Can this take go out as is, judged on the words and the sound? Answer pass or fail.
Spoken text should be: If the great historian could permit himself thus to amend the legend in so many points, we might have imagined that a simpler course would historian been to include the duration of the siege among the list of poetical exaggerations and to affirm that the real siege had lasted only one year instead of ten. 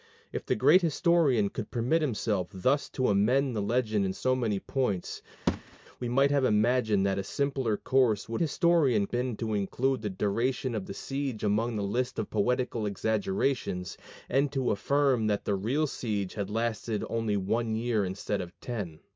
fail